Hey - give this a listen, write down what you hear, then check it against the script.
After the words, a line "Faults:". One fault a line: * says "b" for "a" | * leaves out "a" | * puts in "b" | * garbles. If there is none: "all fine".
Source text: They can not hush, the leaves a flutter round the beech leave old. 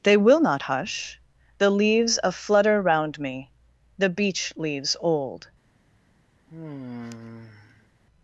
They will not hush, the leaves a flutter round me, the beech leaves old.
Faults:
* says "will" for "can"
* puts in "me"
* says "leaves" for "leave"